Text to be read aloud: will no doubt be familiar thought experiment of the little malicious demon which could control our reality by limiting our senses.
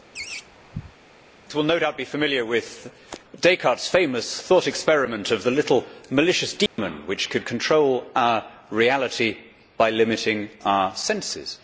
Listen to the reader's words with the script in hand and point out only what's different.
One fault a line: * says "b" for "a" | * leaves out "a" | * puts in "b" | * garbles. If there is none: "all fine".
* puts in "with Descartes famous"